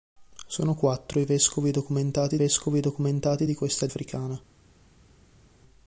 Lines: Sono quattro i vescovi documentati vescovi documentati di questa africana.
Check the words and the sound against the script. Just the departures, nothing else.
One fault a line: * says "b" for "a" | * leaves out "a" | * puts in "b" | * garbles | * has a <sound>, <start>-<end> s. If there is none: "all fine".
all fine